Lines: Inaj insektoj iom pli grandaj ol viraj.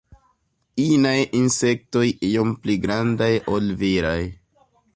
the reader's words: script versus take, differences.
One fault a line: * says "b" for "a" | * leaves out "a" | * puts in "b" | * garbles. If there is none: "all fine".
all fine